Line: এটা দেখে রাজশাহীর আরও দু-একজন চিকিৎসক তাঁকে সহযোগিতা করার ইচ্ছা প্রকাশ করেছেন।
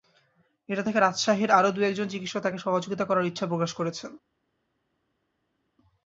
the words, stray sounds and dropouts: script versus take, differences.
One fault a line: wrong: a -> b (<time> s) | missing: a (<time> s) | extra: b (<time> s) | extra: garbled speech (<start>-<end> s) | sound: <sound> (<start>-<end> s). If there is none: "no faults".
no faults